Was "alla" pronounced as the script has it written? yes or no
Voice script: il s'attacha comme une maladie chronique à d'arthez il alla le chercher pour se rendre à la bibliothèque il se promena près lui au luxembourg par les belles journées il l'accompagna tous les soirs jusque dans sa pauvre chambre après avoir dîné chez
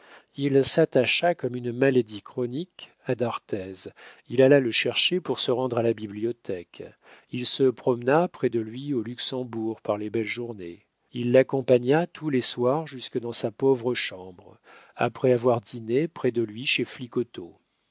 yes